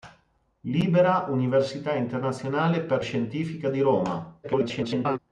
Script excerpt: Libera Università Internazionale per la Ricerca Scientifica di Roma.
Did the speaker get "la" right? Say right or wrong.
wrong